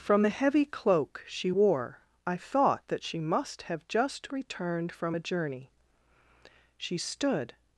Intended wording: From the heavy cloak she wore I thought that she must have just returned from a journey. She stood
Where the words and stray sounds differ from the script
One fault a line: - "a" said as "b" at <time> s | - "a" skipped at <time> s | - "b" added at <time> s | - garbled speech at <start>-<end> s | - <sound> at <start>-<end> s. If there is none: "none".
none